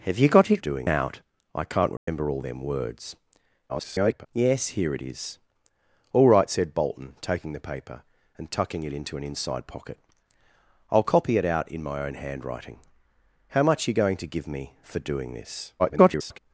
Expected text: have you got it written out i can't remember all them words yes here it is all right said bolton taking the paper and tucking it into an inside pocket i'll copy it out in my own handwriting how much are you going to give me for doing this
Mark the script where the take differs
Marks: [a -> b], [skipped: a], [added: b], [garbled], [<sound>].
have you got it [written -> doing] out i can't remember [dropout] all them words [garbled] yes here it is all right said bolton taking the paper and tucking it into an inside pocket i'll copy it out in my own handwriting how much are you going to give me for doing this [garbled]